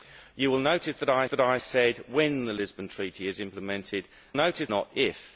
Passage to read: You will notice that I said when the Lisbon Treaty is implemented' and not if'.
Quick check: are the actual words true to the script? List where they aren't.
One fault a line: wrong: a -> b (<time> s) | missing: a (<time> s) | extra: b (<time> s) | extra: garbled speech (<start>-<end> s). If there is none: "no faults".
extra: that I (1.3 s)
wrong: and -> notice (4.3 s)